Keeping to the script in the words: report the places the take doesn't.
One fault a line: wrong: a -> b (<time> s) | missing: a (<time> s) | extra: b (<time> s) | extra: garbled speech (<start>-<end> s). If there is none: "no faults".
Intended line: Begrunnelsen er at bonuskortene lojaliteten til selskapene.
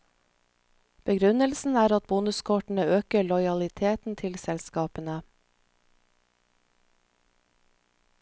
extra: øker (3.0 s)